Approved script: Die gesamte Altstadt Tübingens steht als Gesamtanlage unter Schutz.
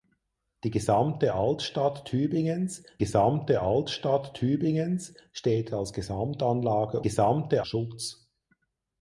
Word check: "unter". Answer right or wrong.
wrong